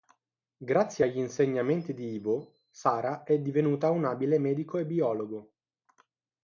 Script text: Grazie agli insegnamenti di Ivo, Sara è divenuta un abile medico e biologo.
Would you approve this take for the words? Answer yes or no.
yes